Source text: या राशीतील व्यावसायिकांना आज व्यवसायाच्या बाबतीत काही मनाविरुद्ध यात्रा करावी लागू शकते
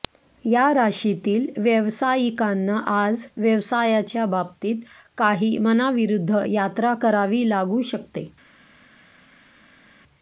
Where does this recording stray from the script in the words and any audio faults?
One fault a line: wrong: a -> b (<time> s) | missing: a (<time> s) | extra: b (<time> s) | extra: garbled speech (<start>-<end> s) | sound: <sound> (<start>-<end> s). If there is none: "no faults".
no faults